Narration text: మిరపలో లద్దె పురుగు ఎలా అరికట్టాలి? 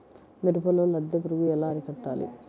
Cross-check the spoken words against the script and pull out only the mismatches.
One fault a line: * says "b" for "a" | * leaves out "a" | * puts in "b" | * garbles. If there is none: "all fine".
all fine